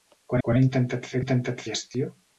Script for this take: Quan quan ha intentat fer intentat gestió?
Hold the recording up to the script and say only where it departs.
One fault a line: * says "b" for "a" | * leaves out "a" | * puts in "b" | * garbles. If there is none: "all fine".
all fine